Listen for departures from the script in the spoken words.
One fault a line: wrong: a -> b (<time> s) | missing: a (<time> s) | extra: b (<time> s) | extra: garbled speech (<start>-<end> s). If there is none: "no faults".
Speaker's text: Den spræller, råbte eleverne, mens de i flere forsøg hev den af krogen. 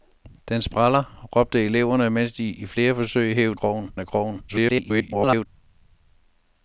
wrong: den -> krogen (3.6 s)
extra: garbled speech (4.5-5.5 s)